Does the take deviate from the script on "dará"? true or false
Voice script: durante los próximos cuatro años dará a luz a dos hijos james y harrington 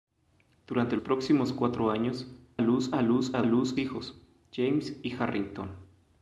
true